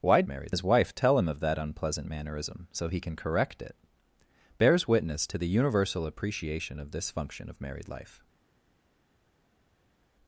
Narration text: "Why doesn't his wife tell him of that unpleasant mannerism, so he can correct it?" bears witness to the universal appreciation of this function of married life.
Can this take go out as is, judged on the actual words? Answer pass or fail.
fail